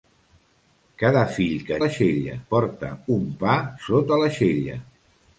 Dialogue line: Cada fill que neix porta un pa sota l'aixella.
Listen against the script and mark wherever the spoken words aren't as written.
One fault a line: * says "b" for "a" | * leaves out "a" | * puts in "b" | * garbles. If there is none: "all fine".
* says "l'aixella" for "neix"